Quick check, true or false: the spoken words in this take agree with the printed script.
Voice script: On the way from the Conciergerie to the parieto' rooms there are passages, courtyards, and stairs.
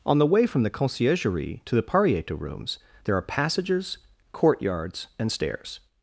true